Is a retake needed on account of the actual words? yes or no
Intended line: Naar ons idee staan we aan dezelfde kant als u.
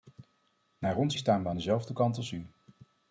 yes